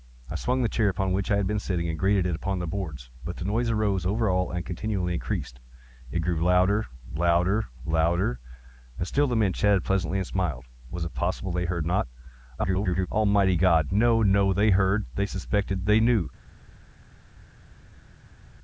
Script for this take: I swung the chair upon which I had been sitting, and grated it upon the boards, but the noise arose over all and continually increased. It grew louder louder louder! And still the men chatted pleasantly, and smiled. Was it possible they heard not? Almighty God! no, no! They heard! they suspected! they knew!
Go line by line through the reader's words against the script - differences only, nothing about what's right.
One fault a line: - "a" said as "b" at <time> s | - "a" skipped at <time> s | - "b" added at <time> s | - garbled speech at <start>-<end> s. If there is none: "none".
- garbled speech at 12.6-13.1 s